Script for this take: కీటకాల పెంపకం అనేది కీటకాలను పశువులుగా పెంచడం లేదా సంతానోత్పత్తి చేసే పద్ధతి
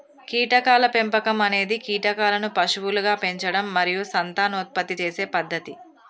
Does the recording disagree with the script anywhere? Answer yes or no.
yes